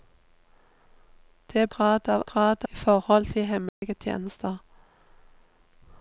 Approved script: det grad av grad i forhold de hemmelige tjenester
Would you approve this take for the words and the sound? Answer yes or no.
no